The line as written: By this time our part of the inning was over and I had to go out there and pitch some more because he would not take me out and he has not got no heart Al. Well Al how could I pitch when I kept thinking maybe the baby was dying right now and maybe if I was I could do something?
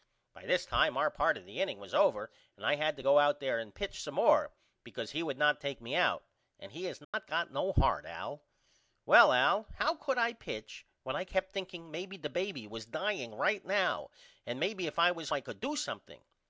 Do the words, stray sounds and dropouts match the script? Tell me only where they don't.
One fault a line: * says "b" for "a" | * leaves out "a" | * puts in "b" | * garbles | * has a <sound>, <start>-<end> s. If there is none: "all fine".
* has a dropout, 7.0-7.1 s